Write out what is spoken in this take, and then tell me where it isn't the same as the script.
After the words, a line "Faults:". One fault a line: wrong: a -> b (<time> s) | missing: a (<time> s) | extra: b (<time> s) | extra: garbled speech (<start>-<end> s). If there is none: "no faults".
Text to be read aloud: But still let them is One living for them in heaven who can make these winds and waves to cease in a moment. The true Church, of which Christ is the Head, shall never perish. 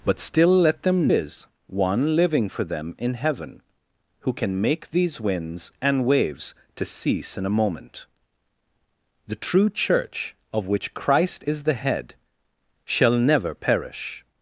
But still let them is One living for them in heaven who can make these winds and waves to cease in a moment. The true Church, of which Christ is the Head, shall never perish.
Faults:
no faults